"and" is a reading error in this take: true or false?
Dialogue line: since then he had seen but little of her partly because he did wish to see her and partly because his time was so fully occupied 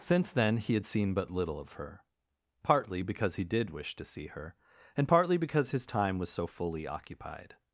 false